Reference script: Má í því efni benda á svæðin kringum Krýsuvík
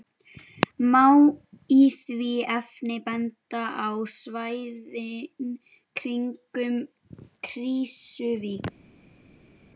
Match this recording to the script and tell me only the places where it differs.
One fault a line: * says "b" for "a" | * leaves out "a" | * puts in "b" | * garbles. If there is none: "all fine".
all fine